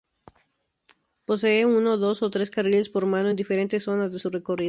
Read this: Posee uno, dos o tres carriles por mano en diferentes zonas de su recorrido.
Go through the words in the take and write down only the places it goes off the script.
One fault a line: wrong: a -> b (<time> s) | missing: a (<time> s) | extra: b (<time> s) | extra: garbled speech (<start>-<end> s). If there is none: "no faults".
no faults